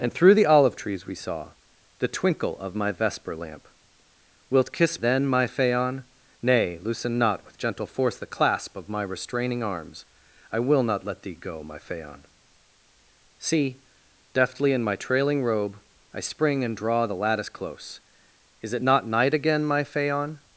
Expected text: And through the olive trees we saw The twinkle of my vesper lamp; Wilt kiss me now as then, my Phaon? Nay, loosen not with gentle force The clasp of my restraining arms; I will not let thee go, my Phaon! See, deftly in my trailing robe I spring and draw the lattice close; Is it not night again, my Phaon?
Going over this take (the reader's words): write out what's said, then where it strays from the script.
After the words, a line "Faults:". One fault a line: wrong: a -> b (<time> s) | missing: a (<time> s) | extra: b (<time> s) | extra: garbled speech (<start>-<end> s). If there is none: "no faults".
And through the olive trees we saw The twinkle of my vesper lamp; Wilt kiss then, my Phaon? Nay, loosen not with gentle force The clasp of my restraining arms; I will not let thee go, my Phaon! See, deftly in my trailing robe I spring and draw the lattice close; Is it not night again, my Phaon?
Faults:
missing: me now as (5.0 s)